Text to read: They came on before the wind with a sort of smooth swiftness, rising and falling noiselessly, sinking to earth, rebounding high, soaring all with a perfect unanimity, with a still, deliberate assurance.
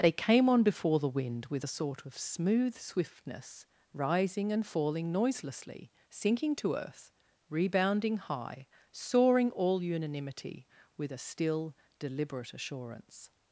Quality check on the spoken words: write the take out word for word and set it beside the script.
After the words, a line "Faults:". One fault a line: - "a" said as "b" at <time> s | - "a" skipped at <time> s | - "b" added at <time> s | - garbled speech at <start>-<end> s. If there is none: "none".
They came on before the wind with a sort of smooth swiftness, rising and falling noiselessly, sinking to earth, rebounding high, soaring all unanimity, with a still, deliberate assurance.
Faults:
- "with a perfect" skipped at 9.8 s